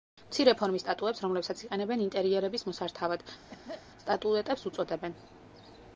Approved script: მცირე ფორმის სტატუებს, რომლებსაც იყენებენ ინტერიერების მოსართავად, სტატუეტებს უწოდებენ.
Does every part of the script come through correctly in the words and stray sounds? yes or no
no